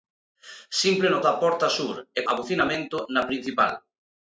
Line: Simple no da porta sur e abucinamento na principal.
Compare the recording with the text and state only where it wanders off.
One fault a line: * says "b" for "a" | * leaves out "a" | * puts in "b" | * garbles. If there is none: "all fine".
all fine